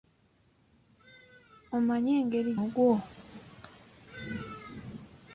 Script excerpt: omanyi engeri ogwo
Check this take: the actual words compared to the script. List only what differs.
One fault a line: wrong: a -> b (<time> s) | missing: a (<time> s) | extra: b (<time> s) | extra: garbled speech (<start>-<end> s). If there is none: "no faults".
no faults